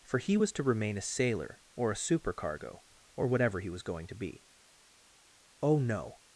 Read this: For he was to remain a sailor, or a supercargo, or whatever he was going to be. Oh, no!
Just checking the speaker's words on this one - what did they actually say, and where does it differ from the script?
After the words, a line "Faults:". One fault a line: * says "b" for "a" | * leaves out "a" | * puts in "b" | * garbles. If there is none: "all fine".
For he was to remain a sailor, or a supercargo, or whatever he was going to be. Oh, no!
Faults:
all fine